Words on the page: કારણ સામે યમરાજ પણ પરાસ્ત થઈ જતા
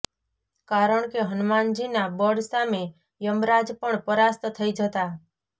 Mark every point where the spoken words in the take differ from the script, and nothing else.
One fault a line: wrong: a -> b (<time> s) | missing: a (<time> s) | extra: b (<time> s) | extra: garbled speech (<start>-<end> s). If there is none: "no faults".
extra: કે હનુમાનજીના બળ (1.1 s)